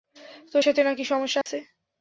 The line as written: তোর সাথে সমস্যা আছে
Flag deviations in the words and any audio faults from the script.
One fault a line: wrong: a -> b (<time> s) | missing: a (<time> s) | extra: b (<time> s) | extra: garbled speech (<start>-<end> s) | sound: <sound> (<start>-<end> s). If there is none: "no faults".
extra: না-কি (0.8 s)
sound: dropout (1.4-1.5 s)